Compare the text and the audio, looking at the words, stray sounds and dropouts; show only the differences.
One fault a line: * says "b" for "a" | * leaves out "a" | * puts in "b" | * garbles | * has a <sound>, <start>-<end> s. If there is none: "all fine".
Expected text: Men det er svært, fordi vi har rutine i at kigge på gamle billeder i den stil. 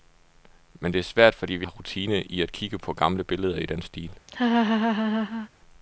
* has a laugh, 4.3-5.5 s